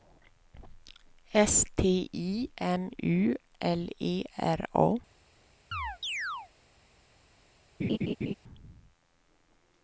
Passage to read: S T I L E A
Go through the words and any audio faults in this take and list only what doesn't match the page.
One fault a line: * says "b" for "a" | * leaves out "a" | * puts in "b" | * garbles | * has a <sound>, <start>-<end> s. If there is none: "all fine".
* puts in "M U"
* puts in "R"
* has a chirp, 5.7-6.5 s
* has a laugh, 7.8-8.3 s